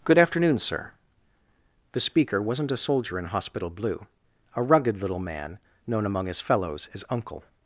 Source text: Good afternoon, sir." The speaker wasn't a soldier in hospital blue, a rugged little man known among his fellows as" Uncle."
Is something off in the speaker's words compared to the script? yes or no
no